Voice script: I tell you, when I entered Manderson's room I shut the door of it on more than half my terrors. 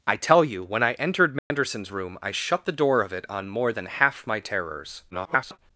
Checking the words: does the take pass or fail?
fail